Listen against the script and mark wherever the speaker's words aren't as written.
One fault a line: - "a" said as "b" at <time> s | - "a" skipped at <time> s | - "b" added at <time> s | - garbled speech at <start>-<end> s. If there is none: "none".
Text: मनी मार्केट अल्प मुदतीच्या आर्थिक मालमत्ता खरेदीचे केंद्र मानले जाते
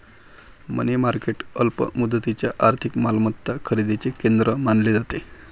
none